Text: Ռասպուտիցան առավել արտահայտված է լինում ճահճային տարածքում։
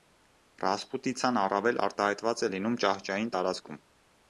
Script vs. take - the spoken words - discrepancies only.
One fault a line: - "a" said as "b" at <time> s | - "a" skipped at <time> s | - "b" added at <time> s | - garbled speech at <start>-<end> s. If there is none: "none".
none